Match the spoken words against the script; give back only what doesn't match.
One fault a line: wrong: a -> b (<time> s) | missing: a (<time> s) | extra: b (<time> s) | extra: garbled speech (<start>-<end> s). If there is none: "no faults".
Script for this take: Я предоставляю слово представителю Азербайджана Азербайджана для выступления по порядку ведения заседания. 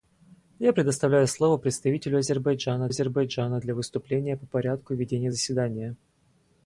no faults